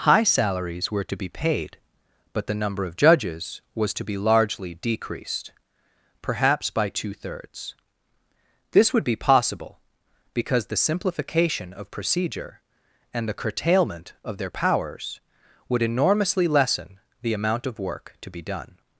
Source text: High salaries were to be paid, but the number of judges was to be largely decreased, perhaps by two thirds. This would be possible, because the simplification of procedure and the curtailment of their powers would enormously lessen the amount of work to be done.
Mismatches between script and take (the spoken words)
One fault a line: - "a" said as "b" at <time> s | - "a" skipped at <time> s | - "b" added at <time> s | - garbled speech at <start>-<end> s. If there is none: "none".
none